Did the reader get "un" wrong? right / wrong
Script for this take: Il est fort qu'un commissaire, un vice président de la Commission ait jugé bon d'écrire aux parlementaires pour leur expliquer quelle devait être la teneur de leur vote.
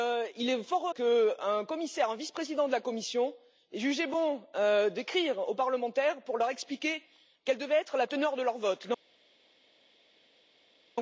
right